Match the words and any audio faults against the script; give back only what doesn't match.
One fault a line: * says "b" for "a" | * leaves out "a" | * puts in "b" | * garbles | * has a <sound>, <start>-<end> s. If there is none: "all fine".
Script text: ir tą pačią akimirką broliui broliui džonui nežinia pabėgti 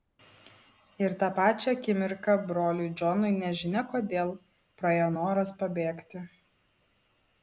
* leaves out "broliui"
* puts in "kodėl praėjo noras"